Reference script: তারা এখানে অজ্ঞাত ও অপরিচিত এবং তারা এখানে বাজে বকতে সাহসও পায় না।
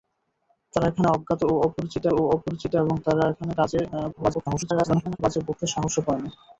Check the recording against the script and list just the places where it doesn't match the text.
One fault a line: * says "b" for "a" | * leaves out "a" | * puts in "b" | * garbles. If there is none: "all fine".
* puts in "ও অপরিচিত"
* garbles